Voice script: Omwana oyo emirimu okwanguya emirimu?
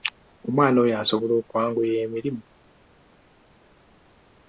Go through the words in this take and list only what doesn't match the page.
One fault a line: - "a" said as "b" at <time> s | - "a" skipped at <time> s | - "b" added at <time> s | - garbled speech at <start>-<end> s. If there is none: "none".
- "emirimu" said as "asobola" at 1.0 s